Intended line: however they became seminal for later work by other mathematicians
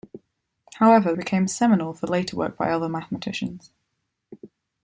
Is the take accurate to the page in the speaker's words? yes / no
no